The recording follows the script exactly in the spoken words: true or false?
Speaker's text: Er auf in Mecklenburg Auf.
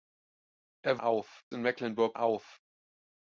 true